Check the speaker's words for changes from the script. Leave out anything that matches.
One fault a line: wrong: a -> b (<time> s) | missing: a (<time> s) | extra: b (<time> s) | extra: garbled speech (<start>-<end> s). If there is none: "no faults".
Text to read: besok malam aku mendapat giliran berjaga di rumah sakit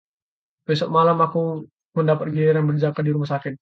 no faults